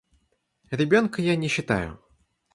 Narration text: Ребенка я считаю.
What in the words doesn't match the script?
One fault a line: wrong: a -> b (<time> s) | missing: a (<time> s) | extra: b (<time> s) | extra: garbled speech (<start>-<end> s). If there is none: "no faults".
extra: не (1.4 s)